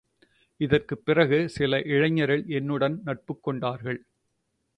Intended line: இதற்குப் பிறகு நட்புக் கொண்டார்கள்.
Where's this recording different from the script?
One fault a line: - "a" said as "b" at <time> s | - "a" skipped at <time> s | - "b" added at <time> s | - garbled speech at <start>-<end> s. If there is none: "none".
- "சில இளைஞர்கள் என்னுடன்" added at 1.5 s